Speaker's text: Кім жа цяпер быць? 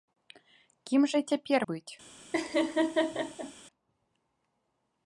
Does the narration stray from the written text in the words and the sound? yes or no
yes